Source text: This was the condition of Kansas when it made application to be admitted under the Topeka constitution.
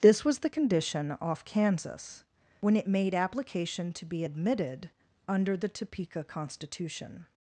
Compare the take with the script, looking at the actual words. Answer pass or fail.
fail